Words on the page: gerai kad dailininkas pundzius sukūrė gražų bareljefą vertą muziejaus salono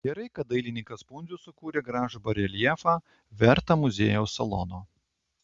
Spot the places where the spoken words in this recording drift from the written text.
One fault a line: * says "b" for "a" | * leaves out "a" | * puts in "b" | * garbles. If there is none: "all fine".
all fine